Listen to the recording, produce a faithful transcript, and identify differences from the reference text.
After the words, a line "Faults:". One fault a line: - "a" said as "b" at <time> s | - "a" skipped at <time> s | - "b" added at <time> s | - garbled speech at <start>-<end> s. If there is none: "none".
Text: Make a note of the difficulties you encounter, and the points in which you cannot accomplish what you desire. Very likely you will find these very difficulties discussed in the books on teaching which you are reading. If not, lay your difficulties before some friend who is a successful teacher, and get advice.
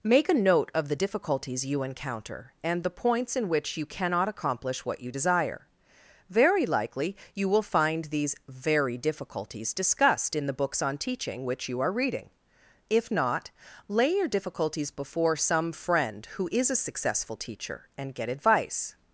Make a note of the difficulties you encounter, and the points in which you cannot accomplish what you desire. Very likely you will find these very difficulties discussed in the books on teaching which you are reading. If not, lay your difficulties before some friend who is a successful teacher, and get advice.
Faults:
none